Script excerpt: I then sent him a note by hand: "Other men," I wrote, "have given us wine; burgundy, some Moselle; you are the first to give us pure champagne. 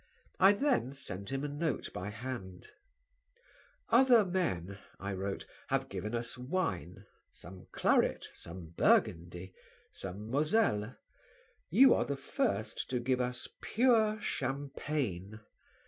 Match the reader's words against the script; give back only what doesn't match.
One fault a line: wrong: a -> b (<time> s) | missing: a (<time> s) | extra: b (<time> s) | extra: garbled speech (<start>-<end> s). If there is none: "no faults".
extra: some claret some (7.3 s)